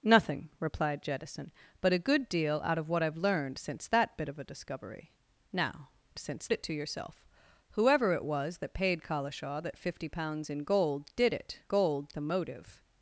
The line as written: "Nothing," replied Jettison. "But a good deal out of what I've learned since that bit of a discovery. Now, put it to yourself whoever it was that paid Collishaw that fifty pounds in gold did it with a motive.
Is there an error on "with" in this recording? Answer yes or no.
yes